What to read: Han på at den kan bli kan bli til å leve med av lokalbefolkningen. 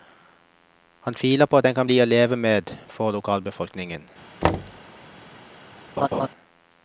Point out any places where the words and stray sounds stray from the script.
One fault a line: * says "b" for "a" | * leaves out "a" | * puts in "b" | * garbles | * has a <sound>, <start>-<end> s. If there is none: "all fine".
* puts in "tviler"
* leaves out "kan bli"
* says "for" for "av"
* has a thud, 4.4-4.8 s
* has a laugh, 6.0-6.3 s